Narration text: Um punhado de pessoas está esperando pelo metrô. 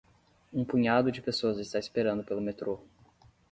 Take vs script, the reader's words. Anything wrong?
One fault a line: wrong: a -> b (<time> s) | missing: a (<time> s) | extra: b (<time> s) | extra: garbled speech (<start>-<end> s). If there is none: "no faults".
no faults